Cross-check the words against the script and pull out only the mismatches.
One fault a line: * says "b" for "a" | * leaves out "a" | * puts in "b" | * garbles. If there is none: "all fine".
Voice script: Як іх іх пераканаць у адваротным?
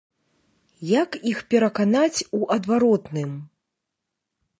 * leaves out "іх"